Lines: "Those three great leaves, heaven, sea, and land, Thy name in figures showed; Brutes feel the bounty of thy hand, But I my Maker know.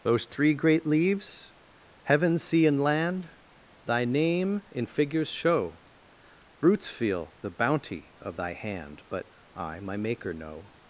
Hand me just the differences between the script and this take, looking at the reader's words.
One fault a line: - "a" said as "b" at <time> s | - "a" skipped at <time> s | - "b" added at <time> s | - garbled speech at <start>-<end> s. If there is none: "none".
- "showed" said as "show" at 5.3 s